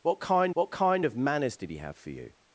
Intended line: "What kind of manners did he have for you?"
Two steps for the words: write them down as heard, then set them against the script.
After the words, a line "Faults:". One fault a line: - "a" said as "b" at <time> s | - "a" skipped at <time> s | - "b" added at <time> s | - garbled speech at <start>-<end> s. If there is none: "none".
"What kind what kind of manners did he have for you?"
Faults:
- "what kind" added at 0.5 s